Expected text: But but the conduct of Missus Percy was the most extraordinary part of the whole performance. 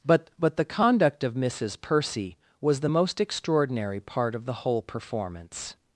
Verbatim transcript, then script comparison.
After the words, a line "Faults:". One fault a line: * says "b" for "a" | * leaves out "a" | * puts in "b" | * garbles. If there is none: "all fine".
But but the conduct of Missus Percy was the most extraordinary part of the whole performance.
Faults:
all fine